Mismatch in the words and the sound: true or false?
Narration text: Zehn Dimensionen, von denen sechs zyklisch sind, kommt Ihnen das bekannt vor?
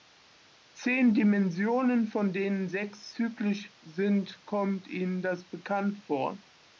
false